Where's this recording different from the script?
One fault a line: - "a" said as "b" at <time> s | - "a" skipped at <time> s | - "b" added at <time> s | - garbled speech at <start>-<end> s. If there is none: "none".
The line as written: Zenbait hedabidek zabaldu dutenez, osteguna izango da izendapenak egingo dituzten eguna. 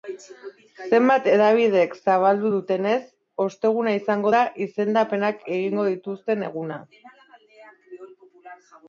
none